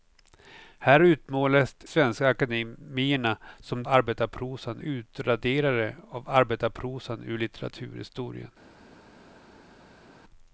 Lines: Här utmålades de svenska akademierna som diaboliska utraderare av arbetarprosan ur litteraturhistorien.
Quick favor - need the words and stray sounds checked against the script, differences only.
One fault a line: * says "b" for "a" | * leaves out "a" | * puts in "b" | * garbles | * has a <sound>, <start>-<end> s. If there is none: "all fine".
* leaves out "de"
* says "arbetarprosan" for "diaboliska"